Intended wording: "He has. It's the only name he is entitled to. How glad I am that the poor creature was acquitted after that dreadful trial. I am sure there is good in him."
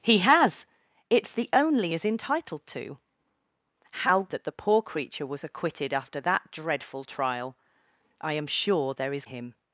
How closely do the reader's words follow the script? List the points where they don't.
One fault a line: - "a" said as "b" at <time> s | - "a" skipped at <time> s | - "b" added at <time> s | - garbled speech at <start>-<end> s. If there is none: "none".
- "name he" skipped at 1.9 s
- "glad I am" skipped at 4.2 s
- "good in" skipped at 9.2 s